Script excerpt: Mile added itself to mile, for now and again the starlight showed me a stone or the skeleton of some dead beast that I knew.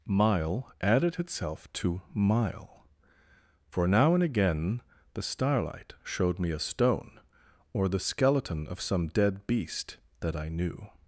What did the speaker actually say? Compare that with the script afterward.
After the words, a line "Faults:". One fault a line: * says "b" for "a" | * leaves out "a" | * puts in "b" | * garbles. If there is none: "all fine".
Mile added itself to mile, for now and again the starlight showed me a stone or the skeleton of some dead beast that I knew.
Faults:
all fine